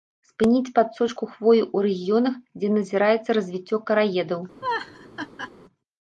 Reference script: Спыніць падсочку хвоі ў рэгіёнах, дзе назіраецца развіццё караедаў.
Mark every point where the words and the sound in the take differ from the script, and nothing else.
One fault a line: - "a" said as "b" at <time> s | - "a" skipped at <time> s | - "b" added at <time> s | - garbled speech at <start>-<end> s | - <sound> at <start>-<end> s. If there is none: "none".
- laugh at 4.6-5.5 s